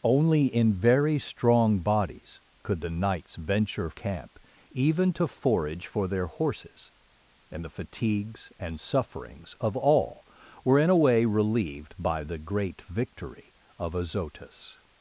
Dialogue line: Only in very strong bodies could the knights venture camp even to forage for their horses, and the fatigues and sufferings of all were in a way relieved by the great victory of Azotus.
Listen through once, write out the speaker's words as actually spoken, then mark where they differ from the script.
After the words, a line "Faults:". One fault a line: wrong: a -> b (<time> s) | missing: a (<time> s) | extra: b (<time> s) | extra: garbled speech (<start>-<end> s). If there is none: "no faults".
Only in very strong bodies could the knights venture camp even to forage for their horses, and the fatigues and sufferings of all were in a way relieved by the great victory of Azotus.
Faults:
no faults